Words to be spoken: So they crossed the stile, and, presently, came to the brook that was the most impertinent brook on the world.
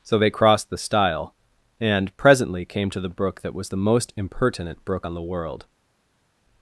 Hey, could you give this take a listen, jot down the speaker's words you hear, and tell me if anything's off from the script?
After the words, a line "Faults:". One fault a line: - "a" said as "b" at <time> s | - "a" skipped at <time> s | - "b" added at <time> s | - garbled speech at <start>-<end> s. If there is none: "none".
So they crossed the stile, and, presently, came to the brook that was the most impertinent brook on the world.
Faults:
none